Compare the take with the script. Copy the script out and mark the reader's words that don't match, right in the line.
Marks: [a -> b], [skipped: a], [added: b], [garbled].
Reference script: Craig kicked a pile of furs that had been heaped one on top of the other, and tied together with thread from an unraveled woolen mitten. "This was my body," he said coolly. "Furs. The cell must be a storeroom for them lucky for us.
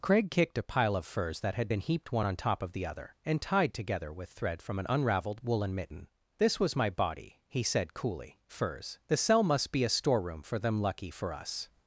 Craig kicked a pile of furs that had been heaped one on top of the other, and tied together with thread from an unraveled woolen mitten. "This was my body," he said coolly. "Furs. The cell must be a storeroom for them lucky for us.